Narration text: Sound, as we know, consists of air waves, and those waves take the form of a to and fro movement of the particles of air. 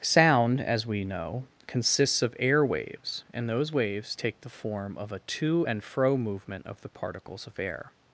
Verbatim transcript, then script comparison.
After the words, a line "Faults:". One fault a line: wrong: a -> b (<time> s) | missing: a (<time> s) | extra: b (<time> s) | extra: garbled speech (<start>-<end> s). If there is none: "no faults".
Sound, as we know, consists of air waves, and those waves take the form of a to and fro movement of the particles of air.
Faults:
no faults